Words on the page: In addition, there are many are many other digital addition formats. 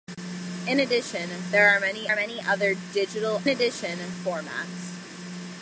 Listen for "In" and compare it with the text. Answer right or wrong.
right